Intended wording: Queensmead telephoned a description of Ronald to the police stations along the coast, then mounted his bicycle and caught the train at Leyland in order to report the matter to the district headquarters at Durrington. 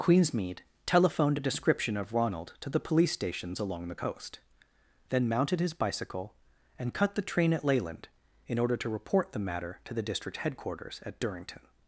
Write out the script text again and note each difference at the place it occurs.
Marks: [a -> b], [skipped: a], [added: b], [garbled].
Queensmead telephoned a description of Ronald to the police stations along the coast, then mounted his bicycle and [caught -> cut] the train at Leyland in order to report the matter to the district headquarters at Durrington.